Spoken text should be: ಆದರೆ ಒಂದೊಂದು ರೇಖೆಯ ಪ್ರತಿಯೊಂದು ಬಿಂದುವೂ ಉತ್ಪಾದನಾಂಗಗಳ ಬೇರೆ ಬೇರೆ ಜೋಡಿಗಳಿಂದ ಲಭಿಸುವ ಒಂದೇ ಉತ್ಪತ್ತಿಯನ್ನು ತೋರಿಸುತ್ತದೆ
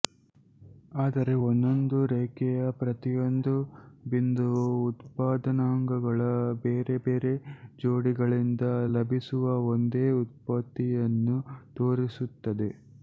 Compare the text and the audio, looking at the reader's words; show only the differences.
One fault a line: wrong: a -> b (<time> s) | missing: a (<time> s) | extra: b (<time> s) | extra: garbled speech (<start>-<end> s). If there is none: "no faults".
no faults